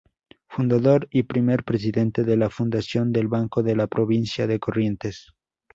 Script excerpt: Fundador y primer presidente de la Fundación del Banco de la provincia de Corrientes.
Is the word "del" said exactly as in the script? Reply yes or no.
yes